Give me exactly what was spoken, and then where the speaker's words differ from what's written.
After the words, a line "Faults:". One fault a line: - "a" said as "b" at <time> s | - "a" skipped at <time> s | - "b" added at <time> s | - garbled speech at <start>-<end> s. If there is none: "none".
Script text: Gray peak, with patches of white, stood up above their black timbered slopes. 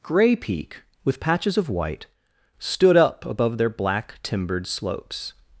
Gray peak, with patches of white, stood up above their black timbered slopes.
Faults:
none